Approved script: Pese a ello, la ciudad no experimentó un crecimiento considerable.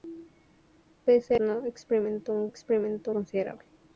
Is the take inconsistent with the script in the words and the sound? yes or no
yes